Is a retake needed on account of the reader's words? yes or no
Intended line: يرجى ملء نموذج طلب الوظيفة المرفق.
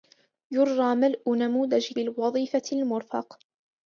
yes